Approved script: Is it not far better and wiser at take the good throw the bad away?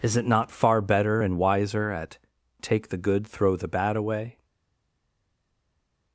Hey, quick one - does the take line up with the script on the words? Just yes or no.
yes